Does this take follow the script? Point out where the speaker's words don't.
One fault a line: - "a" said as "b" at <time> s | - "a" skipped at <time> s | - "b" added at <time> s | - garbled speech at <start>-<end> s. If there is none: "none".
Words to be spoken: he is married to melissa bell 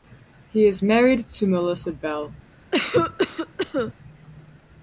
none